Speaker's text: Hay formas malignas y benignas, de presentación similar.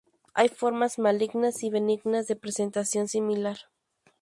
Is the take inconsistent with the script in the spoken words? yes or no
no